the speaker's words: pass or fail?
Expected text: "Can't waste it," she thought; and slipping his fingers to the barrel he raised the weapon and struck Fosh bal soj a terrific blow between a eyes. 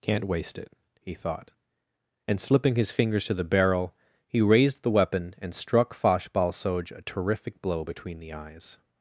fail